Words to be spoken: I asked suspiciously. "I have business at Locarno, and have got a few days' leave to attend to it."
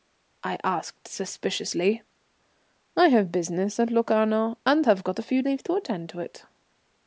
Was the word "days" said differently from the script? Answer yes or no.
yes